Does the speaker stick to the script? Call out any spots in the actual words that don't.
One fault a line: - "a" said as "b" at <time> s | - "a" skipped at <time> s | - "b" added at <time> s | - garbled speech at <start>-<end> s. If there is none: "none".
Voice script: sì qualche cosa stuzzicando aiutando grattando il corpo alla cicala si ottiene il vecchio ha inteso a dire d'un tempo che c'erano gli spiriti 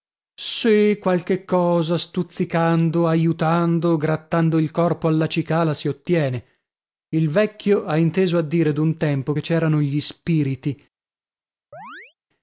none